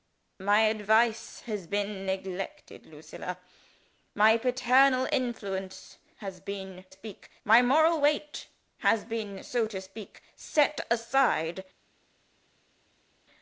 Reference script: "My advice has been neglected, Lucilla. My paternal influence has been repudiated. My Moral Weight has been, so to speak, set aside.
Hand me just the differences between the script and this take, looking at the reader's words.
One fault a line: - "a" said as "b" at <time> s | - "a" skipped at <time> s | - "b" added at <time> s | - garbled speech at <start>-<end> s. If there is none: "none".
- "repudiated" said as "speak" at 6.9 s